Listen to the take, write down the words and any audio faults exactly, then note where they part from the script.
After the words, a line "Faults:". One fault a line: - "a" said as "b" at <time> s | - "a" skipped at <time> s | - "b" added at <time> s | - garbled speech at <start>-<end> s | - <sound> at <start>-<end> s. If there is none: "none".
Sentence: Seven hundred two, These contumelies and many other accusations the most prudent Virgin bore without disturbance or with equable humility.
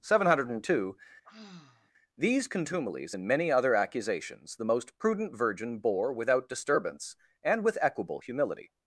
Seven hundred two, These contumelies and many other accusations the most prudent Virgin bore without disturbance and with equable humility.
Faults:
- sigh at 1.2-1.9 s
- "or" said as "and" at 7.4 s